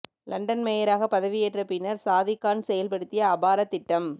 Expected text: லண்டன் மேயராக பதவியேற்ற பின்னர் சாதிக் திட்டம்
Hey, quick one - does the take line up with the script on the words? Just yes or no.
no